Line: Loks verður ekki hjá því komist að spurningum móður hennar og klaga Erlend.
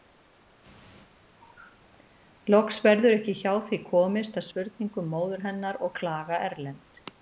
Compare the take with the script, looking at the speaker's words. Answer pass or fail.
pass